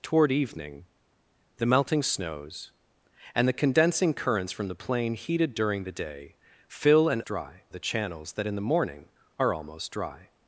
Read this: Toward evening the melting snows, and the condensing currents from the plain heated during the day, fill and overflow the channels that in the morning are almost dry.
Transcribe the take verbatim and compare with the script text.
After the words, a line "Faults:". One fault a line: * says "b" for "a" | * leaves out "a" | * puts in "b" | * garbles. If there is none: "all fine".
Toward evening the melting snows, and the condensing currents from the plain heated during the day, fill and dry the channels that in the morning are almost dry.
Faults:
* says "dry" for "overflow"